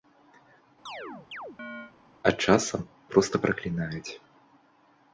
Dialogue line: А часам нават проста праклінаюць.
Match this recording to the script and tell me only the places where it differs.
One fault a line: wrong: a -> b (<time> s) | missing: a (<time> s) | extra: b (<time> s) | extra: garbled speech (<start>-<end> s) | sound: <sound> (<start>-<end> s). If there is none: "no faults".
sound: chirp (0.9-1.9 s)
missing: нават (2.9 s)